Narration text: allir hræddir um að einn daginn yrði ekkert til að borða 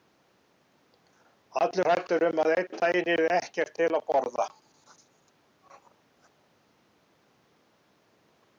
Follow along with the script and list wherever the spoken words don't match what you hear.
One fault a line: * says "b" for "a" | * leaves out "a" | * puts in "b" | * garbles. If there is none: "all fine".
all fine